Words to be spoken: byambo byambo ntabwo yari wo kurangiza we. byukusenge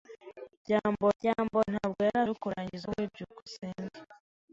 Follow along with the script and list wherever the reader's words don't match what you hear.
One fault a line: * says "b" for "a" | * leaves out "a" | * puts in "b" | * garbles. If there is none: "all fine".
all fine